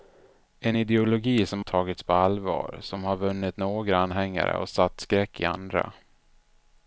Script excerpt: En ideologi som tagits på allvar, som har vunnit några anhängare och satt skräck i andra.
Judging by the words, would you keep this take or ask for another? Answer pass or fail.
pass